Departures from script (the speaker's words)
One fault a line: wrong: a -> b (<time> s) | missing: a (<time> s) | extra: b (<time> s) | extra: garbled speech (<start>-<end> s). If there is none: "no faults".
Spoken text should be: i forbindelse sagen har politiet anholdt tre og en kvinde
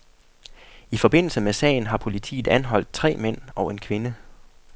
extra: med (1.4 s)
extra: mænd (3.2 s)